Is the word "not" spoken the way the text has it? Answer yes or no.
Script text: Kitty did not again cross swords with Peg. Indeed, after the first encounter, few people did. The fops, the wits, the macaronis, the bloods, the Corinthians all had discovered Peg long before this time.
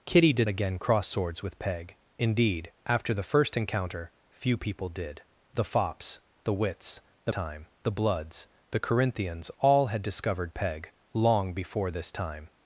no